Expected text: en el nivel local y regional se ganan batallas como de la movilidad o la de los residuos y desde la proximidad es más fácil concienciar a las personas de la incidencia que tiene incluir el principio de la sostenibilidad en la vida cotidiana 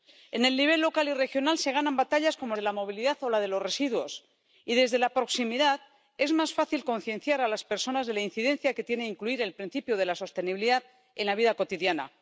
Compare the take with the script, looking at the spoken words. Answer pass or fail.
pass